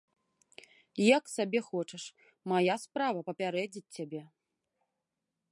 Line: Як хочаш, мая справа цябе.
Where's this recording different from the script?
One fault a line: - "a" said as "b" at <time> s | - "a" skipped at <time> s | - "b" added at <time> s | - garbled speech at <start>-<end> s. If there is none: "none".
- "сабе" added at 1.4 s
- "папярэдзіць" added at 3.3 s